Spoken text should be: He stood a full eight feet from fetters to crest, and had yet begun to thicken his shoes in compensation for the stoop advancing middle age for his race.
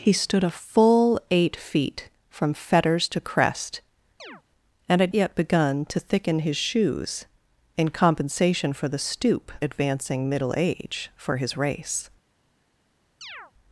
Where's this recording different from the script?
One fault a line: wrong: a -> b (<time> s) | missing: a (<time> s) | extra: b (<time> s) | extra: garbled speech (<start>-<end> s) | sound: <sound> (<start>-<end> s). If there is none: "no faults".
sound: chirp (4.2-4.4 s)
sound: chirp (13.2-13.5 s)